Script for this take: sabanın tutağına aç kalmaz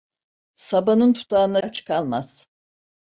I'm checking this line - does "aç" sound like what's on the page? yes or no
yes